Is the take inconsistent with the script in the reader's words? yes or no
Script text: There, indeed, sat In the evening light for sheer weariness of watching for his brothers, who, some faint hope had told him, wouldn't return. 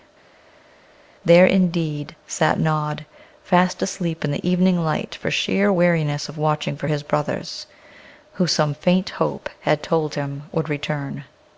yes